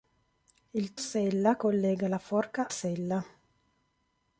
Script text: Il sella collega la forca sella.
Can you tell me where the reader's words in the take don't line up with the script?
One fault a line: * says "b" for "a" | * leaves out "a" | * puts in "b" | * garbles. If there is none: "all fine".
all fine